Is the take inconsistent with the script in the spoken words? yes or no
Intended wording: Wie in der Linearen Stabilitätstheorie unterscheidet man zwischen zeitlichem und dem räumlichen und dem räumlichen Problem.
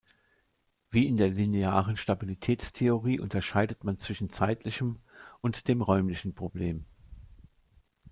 yes